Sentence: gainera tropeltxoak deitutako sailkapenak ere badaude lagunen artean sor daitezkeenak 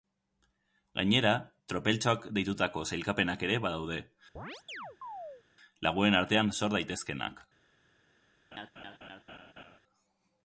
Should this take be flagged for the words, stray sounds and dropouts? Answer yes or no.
yes